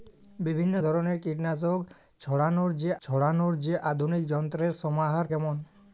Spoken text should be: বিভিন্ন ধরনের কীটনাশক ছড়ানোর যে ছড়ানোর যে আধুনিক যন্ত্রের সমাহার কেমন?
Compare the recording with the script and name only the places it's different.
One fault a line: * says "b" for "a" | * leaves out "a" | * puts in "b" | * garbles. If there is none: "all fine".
all fine